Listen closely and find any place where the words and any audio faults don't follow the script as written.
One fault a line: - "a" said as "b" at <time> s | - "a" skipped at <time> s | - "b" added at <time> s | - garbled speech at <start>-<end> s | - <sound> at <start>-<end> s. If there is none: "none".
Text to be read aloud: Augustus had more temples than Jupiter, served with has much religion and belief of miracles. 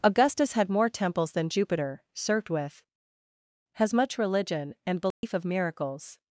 - dropout at 5.1-5.2 s